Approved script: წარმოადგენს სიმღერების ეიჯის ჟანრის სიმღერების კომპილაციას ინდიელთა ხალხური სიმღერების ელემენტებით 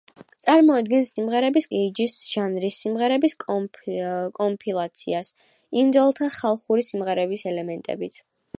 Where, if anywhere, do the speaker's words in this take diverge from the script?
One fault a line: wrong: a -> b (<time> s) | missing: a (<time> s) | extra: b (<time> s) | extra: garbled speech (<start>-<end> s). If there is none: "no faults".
no faults